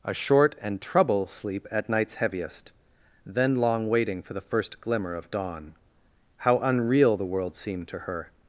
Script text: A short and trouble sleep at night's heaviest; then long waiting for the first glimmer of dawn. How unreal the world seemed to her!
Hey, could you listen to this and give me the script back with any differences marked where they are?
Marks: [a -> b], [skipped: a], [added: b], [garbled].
A short and trouble sleep at night's heaviest; then long waiting for the first glimmer of dawn. How unreal the world seemed to her!